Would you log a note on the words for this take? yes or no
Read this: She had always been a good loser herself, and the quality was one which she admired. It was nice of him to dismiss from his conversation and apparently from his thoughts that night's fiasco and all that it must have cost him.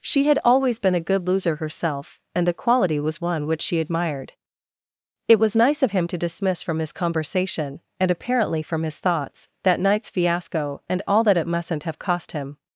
yes